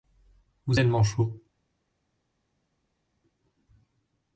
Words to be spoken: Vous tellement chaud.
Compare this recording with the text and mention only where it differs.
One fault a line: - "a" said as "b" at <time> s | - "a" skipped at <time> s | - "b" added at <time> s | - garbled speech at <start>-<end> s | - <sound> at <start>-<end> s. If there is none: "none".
none